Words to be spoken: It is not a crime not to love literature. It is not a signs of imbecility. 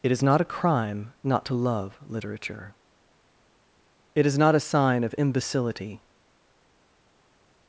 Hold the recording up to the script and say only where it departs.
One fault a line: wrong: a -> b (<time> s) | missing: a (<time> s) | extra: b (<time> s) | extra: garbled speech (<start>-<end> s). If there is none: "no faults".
wrong: signs -> sign (4.6 s)